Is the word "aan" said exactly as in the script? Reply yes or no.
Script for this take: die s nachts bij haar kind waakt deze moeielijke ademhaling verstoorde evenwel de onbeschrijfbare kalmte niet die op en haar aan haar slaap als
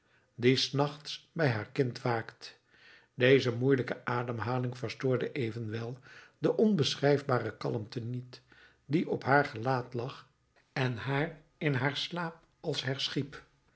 no